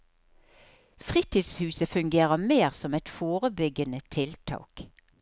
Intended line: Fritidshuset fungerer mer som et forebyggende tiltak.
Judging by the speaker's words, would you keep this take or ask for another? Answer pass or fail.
pass